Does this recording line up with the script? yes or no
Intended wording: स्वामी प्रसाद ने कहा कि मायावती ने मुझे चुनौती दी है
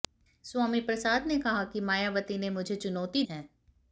no